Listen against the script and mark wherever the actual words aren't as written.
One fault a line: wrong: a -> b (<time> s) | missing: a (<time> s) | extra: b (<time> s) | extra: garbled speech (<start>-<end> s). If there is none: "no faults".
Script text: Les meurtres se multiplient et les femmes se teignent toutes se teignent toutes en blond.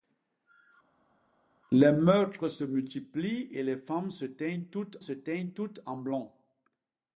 no faults